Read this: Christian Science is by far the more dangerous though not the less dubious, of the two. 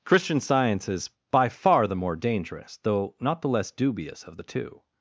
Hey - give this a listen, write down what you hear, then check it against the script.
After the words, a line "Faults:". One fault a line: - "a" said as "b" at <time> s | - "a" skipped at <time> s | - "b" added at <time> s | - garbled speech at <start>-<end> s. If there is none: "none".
Christian Science is by far the more dangerous though not the less dubious, of the two.
Faults:
none